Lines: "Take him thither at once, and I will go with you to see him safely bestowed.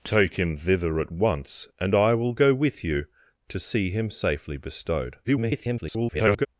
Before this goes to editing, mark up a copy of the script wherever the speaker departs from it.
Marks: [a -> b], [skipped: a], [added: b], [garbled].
"Take him thither at once, and I will go with you to see him safely bestowed. [garbled]